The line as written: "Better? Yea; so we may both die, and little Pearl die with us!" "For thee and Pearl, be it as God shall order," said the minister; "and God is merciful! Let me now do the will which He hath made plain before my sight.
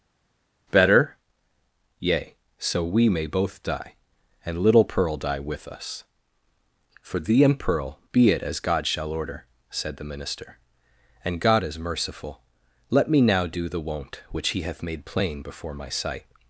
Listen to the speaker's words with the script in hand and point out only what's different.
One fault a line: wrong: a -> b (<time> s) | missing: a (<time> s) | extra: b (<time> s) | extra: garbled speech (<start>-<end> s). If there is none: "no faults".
wrong: will -> won't (13.8 s)